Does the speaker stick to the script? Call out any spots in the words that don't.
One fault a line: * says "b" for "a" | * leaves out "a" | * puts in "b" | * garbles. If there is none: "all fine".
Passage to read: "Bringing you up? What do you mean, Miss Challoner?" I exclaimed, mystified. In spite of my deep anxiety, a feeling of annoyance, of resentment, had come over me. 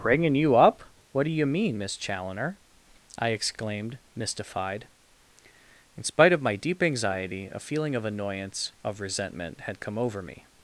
all fine